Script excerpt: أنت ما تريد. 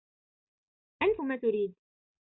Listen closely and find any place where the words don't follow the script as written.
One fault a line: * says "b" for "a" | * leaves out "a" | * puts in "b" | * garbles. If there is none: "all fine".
all fine